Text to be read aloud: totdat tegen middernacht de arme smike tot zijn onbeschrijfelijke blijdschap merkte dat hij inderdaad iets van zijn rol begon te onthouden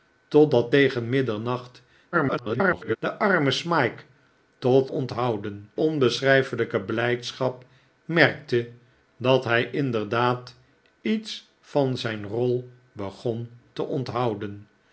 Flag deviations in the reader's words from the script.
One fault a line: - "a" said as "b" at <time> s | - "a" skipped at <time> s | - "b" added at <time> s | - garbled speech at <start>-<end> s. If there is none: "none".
- garbled speech at 2.1-3.0 s
- "zijn" said as "onthouden" at 4.9 s